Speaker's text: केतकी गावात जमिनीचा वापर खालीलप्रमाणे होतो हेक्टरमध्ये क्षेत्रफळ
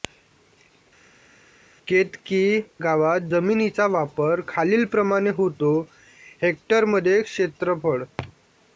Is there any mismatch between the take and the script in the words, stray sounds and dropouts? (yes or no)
no